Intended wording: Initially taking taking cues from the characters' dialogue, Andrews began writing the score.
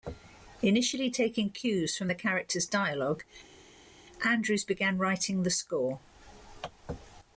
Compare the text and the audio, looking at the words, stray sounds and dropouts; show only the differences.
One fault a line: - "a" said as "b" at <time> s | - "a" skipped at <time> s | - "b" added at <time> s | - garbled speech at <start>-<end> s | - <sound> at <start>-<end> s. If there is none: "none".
- "taking" skipped at 1.5 s